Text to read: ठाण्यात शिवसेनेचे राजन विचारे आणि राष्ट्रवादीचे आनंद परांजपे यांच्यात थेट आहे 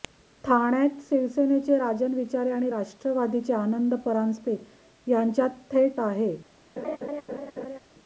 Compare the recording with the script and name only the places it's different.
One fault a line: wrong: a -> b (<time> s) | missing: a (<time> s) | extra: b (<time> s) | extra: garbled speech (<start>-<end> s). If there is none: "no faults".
no faults